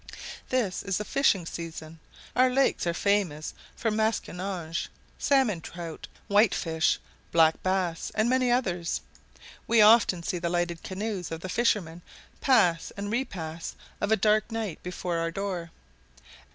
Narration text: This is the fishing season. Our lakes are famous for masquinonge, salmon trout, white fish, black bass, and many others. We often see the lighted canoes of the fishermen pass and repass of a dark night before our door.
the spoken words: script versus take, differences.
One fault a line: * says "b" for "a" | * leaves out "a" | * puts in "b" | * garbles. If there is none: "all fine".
all fine